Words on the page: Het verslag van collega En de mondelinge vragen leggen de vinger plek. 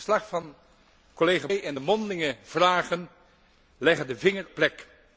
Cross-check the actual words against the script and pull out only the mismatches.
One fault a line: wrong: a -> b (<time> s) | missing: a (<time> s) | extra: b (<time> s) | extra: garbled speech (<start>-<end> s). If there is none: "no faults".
no faults